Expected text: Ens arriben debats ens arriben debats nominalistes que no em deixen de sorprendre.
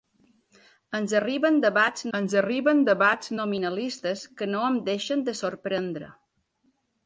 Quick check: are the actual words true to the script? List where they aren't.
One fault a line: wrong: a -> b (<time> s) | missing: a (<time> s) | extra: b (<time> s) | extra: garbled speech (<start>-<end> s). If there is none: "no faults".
no faults